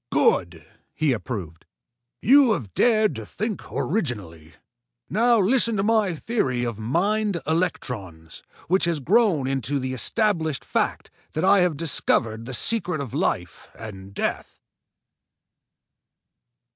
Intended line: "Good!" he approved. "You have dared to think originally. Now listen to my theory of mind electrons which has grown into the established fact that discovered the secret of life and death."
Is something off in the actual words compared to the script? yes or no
yes